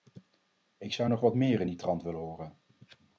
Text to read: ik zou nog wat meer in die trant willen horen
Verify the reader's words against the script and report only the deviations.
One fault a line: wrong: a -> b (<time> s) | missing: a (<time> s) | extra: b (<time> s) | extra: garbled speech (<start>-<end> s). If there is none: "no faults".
no faults